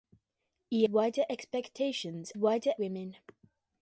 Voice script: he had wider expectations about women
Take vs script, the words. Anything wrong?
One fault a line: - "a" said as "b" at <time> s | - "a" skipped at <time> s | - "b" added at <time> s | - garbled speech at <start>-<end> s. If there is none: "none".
- "had" skipped at 0.8 s
- "about" said as "wider" at 2.4 s